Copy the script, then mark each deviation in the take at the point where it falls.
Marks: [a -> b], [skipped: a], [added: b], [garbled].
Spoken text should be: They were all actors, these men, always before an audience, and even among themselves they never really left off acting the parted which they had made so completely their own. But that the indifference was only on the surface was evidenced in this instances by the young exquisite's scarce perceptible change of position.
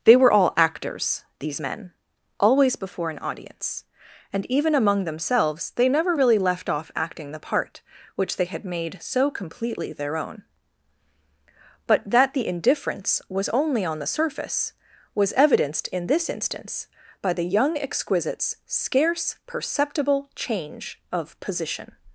They were all actors, these men, always before an audience, and even among themselves they never really left off acting the [parted -> part] which they had made so completely their own. But that the indifference was only on the surface was evidenced in this [instances -> instance] by the young exquisite's scarce perceptible change of position.